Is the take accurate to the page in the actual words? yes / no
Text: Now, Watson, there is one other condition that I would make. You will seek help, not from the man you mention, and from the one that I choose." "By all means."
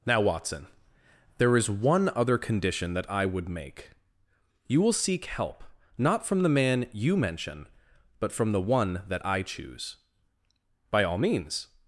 no